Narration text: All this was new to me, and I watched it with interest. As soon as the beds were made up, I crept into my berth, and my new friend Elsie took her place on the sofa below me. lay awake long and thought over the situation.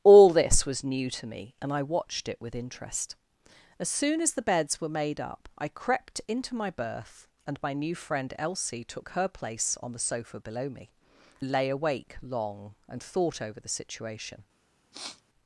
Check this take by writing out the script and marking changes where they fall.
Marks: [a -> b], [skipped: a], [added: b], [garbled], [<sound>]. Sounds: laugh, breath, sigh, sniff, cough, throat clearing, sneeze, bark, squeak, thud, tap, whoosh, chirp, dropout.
All this was new to me, and I watched it with interest. As soon as the beds were made up, I crept into my berth, and my new friend Elsie took her place on the sofa below me. lay awake long and thought over the situation. [sniff]